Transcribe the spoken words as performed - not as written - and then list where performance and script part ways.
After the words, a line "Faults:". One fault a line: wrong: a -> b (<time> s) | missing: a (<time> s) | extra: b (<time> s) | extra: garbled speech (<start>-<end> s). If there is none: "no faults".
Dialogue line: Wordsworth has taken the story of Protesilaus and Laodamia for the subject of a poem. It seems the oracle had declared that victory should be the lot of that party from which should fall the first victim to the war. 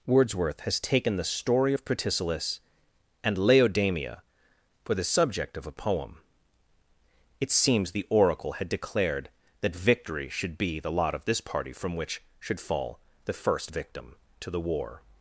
Wordsworth has taken the story of Protesilaus and Laodamia for the subject of a poem. It seems the oracle had declared that victory should be the lot of this party from which should fall the first victim to the war.
Faults:
wrong: that -> this (11.3 s)